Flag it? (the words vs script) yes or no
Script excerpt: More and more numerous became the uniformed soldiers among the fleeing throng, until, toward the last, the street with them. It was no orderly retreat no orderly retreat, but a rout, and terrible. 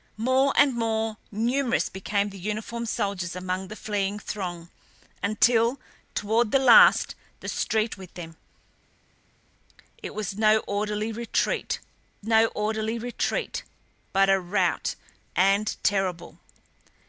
no